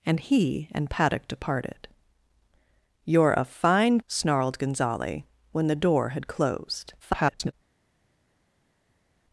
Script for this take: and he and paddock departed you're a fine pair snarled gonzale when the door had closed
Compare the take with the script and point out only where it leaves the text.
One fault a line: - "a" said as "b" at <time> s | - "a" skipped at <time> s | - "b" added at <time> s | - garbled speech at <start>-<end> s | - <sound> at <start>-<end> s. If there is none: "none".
- "pair" skipped at 4.0 s
- garbled speech at 7.0-7.5 s